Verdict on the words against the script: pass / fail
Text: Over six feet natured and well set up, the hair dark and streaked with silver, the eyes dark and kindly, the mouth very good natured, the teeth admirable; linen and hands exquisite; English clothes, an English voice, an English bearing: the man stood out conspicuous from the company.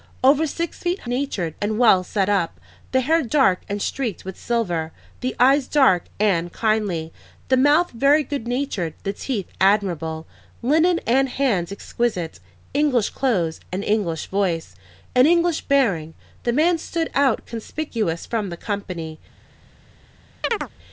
pass